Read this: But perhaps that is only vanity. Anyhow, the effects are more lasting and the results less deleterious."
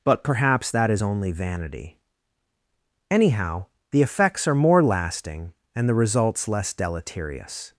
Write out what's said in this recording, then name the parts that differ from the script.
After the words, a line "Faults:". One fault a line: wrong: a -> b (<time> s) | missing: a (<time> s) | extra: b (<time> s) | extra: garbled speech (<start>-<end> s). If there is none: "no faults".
But perhaps that is only vanity. Anyhow, the effects are more lasting and the results less deleterious."
Faults:
no faults